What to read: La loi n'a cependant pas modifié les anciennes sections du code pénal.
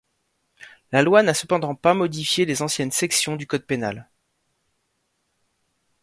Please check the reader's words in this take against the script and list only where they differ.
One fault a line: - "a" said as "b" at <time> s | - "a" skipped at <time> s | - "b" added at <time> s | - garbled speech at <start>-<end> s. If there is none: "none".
none